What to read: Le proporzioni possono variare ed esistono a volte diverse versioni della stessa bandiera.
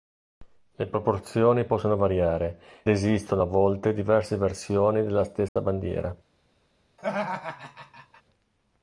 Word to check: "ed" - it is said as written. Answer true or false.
false